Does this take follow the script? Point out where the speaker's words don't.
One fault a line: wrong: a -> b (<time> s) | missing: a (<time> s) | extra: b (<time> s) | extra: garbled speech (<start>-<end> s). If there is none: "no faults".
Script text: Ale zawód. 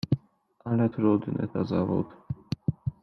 extra: trudny to (0.8 s)